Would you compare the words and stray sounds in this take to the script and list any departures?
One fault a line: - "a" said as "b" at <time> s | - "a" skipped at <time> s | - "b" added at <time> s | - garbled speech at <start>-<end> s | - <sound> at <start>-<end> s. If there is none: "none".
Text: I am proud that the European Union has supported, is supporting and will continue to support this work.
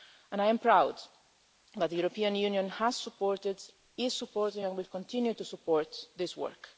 none